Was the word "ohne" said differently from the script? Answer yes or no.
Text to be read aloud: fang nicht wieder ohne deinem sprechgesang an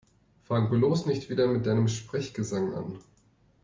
yes